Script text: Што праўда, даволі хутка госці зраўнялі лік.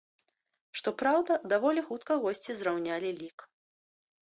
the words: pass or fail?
pass